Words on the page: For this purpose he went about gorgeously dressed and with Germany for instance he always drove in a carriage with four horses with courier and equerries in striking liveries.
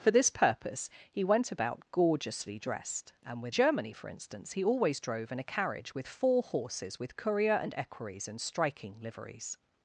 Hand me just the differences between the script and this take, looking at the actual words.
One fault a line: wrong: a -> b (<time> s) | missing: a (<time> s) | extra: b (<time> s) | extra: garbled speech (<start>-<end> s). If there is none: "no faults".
no faults